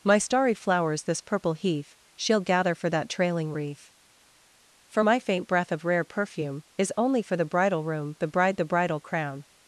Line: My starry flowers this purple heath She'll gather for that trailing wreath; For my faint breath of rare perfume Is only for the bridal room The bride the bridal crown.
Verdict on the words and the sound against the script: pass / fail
pass